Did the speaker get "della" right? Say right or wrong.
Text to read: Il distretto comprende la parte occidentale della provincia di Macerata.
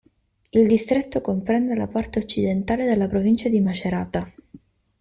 right